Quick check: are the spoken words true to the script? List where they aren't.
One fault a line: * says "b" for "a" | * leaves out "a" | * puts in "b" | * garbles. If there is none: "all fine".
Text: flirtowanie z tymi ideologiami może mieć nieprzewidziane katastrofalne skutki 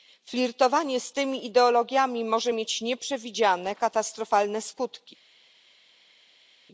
all fine